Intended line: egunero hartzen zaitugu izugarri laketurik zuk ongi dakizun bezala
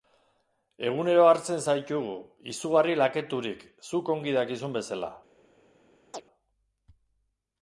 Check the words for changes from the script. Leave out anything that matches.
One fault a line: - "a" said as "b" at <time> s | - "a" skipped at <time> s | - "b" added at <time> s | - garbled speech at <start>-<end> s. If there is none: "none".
none